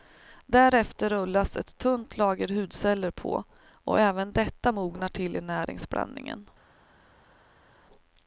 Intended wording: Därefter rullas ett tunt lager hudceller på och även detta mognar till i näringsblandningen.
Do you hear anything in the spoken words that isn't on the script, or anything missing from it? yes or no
no